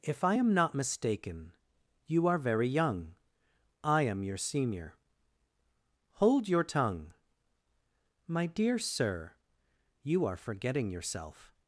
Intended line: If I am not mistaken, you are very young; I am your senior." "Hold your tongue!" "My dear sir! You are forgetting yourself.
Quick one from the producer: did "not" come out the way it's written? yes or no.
yes